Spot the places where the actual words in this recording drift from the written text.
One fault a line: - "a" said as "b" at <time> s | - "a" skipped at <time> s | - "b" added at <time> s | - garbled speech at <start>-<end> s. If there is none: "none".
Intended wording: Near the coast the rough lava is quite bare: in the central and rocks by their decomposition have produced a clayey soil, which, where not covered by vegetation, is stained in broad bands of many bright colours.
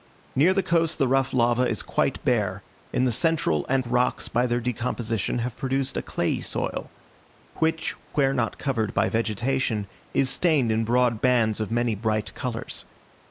none